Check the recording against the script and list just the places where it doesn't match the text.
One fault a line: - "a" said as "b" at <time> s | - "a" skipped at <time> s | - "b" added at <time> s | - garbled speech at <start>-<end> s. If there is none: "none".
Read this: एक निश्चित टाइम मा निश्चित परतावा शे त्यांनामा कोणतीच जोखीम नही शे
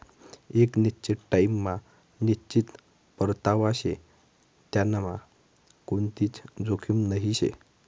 none